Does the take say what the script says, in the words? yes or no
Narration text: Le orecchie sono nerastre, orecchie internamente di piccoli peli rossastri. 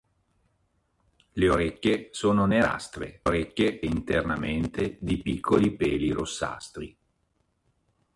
yes